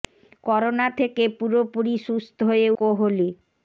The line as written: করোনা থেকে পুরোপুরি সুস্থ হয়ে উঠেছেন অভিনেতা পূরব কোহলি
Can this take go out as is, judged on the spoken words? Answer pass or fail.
fail